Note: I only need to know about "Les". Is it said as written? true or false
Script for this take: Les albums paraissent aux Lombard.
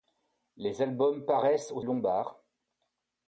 true